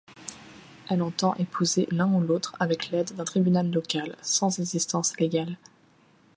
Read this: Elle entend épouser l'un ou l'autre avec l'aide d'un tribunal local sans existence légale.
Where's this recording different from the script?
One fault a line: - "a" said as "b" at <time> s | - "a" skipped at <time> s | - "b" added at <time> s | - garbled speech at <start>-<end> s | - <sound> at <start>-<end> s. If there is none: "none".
none